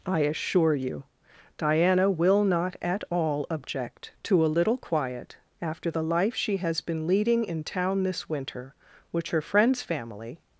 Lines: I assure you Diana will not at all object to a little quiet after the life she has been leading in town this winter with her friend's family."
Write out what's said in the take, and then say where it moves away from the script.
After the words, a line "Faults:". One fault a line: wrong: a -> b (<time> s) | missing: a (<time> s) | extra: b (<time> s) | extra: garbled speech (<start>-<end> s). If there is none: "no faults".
I assure you Diana will not at all object to a little quiet after the life she has been leading in town this winter which her friend's family."
Faults:
wrong: with -> which (9.1 s)